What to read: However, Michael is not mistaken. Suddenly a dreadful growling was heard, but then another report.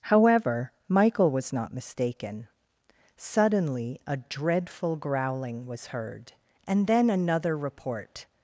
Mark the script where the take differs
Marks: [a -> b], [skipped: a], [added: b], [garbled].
However, Michael [is -> was] not mistaken. Suddenly a dreadful growling was heard, [but -> and] then another report.